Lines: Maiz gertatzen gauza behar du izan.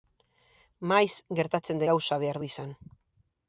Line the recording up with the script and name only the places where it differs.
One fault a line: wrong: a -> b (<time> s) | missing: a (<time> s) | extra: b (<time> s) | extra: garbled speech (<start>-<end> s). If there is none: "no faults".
no faults